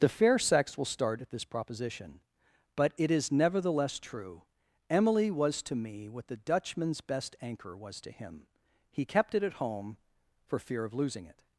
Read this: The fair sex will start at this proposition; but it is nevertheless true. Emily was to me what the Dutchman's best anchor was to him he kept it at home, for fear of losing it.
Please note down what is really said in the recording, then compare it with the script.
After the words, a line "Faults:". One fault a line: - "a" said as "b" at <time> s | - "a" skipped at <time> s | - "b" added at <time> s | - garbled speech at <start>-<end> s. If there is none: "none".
The fair sex will start at this proposition; but it is nevertheless true. Emily was to me what the Dutchman's best anchor was to him he kept it at home, for fear of losing it.
Faults:
none